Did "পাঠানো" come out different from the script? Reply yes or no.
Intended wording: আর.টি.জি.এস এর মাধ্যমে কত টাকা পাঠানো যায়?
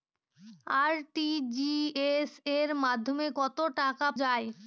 yes